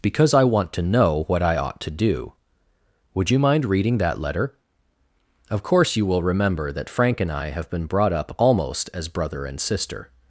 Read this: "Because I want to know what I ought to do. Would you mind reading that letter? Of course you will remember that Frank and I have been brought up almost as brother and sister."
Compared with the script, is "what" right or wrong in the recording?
right